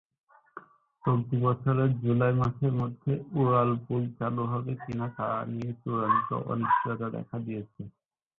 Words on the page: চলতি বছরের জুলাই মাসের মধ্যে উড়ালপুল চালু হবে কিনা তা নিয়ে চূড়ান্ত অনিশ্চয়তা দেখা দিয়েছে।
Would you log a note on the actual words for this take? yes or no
no